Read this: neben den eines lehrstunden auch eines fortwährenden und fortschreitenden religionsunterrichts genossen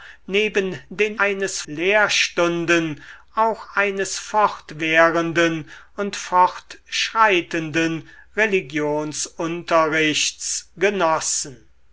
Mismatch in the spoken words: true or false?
false